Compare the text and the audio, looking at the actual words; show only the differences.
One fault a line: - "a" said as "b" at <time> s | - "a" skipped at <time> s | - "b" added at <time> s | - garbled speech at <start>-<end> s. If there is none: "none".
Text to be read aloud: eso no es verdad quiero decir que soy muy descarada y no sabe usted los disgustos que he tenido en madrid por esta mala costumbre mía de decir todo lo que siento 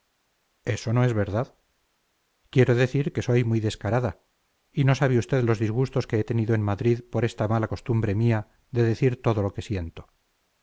none